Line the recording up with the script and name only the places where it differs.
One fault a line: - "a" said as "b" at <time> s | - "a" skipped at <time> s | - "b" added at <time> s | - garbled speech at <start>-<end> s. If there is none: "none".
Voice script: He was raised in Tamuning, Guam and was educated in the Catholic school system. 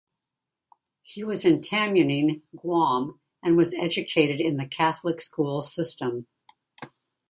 - "raised" skipped at 1.4 s